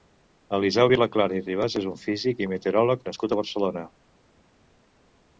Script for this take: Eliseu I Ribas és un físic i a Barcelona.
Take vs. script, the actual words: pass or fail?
fail